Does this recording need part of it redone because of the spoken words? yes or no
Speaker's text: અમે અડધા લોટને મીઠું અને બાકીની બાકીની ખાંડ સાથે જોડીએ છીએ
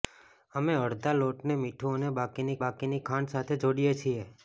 no